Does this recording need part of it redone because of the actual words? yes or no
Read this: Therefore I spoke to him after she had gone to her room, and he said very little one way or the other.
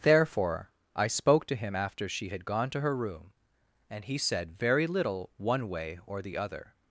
no